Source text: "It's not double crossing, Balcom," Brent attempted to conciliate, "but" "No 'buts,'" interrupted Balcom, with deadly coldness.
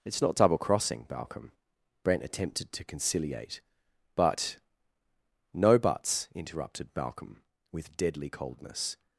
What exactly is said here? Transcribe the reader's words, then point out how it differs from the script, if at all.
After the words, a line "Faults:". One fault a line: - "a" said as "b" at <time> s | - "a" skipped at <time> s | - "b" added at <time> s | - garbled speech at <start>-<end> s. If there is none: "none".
"It's not double crossing, Balcom," Brent attempted to conciliate, "but" "No 'buts,'" interrupted Balcom, with deadly coldness.
Faults:
none